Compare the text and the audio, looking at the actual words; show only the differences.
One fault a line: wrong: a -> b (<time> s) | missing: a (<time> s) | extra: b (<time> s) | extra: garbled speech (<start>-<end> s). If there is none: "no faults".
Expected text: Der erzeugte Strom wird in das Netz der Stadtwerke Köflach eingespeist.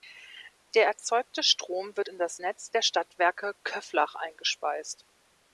no faults